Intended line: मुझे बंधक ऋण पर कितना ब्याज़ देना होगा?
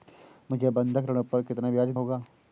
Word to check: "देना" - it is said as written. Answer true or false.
false